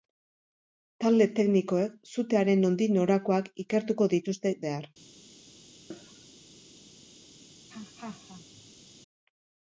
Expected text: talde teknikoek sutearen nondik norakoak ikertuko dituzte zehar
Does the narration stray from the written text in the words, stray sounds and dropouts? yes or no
yes